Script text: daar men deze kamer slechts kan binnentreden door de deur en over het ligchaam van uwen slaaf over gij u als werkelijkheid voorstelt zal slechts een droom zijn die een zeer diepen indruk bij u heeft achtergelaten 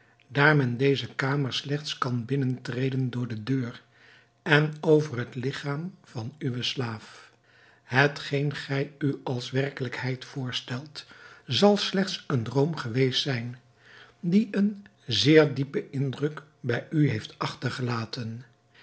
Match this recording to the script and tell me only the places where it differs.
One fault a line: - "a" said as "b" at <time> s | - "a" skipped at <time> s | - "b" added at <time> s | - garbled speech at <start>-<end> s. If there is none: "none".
- "over" said as "hetgeen" at 7.8 s
- "geweest" added at 12.8 s